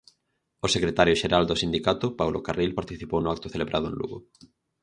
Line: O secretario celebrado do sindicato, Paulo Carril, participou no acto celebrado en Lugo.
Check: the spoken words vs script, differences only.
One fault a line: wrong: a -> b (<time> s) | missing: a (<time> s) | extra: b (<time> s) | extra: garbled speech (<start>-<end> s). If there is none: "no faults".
wrong: celebrado -> xeral (1.2 s)